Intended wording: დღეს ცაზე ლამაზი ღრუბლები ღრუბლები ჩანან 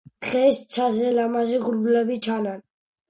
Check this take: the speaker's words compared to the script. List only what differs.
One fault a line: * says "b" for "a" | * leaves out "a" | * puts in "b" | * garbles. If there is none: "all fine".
* leaves out "ღრუბლები"